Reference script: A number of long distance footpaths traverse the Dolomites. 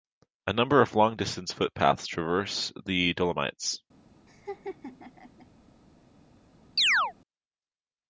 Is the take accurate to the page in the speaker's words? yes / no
yes